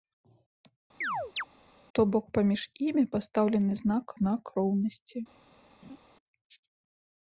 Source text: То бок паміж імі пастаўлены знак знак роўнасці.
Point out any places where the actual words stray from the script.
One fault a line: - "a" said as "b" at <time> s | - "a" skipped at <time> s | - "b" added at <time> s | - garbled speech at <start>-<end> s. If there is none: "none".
none